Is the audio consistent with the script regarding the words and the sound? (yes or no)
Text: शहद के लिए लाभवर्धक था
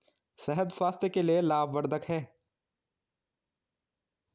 no